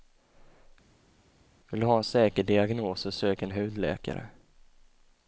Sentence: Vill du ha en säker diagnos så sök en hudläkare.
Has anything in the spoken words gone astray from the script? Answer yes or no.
no